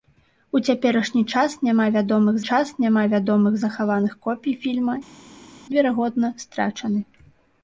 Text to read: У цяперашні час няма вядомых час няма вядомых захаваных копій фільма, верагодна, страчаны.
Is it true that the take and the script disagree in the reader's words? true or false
false